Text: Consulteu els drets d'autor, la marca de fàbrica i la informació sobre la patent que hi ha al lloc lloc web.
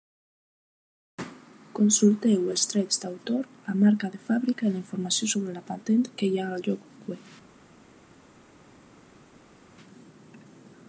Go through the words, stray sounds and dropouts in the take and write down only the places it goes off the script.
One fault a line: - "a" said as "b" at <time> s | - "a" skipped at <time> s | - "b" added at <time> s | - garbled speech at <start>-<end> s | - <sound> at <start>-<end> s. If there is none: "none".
- "lloc" skipped at 7.1 s